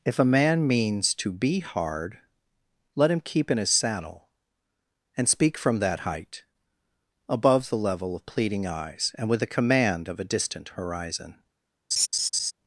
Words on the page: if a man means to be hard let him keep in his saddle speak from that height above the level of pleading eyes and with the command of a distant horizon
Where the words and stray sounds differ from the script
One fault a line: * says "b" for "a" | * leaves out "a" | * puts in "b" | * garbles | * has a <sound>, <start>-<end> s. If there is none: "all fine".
* puts in "and"
* has a laugh, 11.9-12.5 s